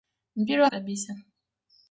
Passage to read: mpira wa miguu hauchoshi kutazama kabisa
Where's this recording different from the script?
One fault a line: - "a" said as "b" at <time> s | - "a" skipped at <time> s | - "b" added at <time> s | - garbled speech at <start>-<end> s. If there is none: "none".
- "miguu hauchoshi kutazama" skipped at 0.7 s